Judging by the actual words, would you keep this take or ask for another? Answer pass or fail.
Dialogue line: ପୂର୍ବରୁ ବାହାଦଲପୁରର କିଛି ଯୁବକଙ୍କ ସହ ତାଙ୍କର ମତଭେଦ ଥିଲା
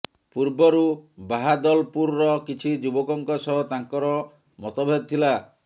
pass